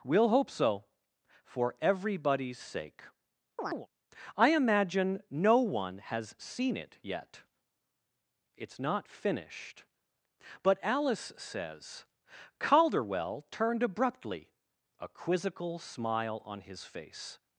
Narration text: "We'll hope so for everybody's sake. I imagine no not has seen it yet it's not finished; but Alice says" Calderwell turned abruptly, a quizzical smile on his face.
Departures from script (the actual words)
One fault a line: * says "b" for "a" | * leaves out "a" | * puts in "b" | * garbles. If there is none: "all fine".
* says "one" for "not"